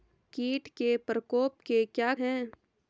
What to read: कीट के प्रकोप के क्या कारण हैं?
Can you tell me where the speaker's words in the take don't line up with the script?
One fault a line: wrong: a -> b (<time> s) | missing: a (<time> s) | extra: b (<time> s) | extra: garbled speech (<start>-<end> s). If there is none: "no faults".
missing: कारण (2.1 s)